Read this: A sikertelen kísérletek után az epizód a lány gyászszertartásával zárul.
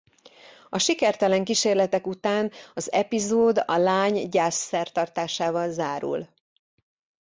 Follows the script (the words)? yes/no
yes